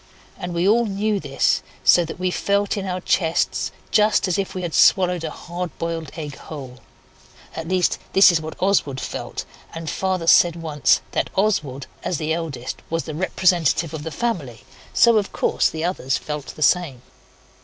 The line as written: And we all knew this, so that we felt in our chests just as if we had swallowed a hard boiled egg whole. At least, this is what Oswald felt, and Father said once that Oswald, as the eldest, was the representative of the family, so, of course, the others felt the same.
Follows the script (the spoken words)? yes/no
yes